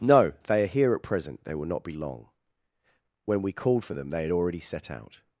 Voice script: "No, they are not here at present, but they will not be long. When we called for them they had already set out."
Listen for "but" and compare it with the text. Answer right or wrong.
wrong